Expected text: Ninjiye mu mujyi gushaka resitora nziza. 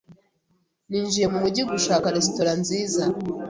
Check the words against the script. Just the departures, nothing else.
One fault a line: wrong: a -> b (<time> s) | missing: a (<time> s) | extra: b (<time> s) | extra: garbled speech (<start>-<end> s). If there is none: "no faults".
no faults